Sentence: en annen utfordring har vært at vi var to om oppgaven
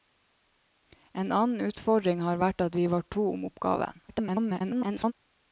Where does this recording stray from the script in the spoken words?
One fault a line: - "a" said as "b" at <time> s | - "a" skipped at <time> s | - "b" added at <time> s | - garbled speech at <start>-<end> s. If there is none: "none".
- garbled speech at 4.1-5.1 s